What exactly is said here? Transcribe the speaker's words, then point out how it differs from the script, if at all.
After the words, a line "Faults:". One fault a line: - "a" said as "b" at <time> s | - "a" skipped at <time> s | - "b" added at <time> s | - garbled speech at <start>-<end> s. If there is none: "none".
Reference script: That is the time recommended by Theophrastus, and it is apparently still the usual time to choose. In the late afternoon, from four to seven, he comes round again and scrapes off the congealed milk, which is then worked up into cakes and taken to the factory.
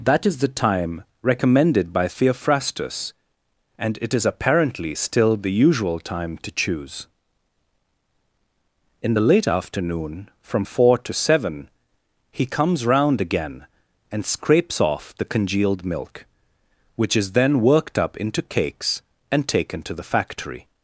That is the time recommended by Theophrastus, and it is apparently still the usual time to choose. In the late afternoon, from four to seven, he comes round again and scrapes off the congealed milk, which is then worked up into cakes and taken to the factory.
Faults:
none